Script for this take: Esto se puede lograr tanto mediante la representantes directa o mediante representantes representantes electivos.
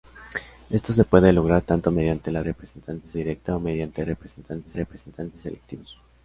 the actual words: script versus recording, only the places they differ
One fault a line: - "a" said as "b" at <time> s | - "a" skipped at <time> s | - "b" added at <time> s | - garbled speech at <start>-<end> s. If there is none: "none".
none